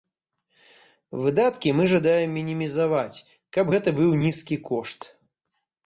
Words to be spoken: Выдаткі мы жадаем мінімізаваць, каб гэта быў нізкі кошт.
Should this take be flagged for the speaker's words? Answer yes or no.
no